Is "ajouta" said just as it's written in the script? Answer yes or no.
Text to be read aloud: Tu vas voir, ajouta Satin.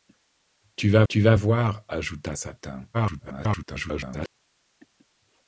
yes